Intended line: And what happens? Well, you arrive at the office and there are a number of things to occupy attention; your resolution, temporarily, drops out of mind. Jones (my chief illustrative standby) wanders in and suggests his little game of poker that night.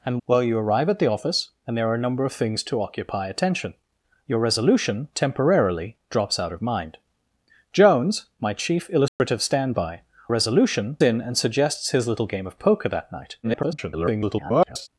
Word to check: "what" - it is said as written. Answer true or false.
false